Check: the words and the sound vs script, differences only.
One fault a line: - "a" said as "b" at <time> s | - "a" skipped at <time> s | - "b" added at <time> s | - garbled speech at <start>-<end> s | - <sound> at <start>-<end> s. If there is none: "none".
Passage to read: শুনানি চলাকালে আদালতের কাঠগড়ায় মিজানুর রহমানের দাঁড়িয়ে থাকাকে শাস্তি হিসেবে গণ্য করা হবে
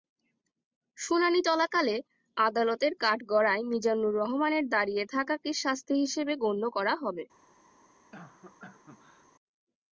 - cough at 8.1-9.3 s